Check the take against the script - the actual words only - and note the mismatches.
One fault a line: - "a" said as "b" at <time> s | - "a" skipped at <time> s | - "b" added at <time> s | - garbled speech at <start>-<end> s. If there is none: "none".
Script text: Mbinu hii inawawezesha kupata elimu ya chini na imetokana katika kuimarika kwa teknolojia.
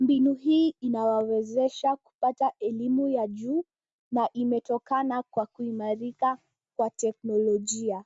- "chini" said as "juu" at 3.3 s
- "katika" said as "kwa" at 5.2 s